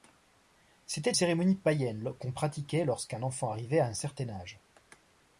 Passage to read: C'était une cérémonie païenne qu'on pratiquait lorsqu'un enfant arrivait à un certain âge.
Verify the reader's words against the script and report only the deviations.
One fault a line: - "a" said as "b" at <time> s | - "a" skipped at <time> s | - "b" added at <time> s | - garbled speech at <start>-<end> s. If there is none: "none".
- "une" skipped at 1.1 s